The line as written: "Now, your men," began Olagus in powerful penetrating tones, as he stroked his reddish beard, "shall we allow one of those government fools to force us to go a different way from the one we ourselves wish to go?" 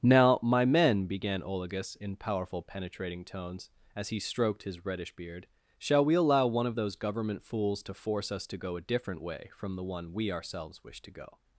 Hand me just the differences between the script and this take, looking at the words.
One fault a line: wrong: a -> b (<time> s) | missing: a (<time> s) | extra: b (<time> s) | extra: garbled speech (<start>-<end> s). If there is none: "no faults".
wrong: your -> my (0.4 s)